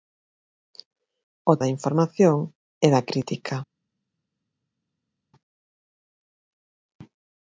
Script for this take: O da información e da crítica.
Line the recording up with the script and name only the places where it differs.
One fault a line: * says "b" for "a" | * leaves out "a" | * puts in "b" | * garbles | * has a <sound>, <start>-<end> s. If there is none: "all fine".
all fine